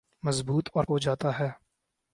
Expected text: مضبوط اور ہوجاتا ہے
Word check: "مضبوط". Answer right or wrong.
right